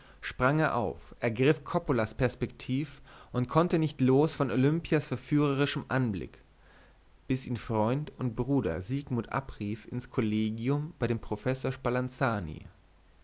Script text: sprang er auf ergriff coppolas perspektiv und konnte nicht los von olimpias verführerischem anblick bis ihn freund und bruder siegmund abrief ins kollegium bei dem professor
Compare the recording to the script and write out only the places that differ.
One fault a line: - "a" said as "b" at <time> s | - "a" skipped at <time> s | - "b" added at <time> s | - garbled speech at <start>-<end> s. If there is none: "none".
none